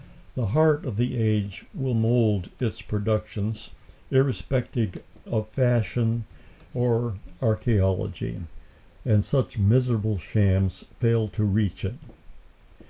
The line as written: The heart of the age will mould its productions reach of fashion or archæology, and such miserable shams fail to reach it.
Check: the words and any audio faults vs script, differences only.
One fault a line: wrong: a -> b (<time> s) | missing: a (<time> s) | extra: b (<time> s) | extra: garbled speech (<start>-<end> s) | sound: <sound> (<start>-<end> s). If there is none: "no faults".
wrong: reach -> irrespective (4.1 s)